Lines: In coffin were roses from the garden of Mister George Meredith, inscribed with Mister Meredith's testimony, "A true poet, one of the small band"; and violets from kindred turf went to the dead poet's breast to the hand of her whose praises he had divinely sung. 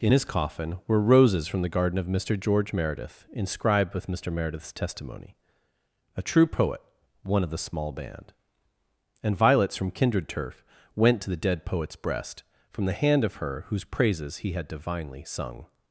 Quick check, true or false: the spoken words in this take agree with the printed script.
false